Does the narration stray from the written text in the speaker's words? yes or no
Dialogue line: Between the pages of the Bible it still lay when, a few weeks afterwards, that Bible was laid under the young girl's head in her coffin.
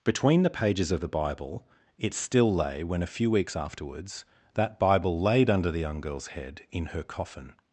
yes